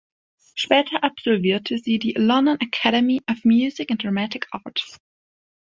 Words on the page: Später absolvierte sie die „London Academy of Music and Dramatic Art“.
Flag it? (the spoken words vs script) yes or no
no